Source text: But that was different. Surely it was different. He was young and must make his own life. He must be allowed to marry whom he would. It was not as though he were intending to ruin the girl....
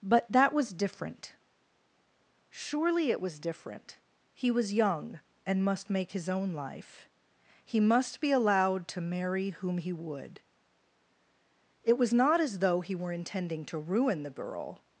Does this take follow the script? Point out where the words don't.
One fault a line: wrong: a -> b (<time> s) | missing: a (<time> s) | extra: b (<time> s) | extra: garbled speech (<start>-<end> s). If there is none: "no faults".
no faults